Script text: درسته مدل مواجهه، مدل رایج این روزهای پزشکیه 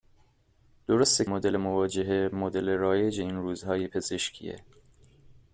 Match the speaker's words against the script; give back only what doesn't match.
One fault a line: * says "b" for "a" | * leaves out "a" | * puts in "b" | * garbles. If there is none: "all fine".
all fine